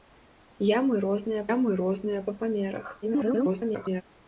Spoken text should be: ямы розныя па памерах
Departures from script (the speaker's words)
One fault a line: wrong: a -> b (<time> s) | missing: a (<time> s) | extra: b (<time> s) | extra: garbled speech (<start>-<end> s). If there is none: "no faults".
extra: ямы розныя (1.5 s)
extra: garbled speech (3.0-4.0 s)